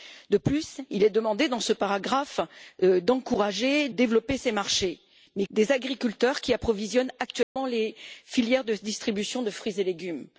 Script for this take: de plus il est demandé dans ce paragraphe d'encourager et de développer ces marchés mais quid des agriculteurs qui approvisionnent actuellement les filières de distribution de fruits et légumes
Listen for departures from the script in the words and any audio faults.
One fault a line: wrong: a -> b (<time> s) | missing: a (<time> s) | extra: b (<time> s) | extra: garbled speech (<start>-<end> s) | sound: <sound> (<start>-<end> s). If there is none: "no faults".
missing: de (3.9 s)
missing: quid (5.5 s)
sound: dropout (7.4-7.6 s)